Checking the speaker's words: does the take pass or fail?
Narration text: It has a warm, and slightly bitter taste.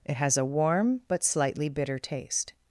fail